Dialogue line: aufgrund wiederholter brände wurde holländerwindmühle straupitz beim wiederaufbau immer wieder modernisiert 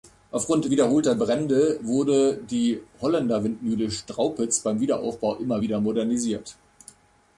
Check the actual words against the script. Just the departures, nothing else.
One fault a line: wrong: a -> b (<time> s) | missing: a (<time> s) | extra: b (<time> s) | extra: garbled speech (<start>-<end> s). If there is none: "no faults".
extra: die (2.4 s)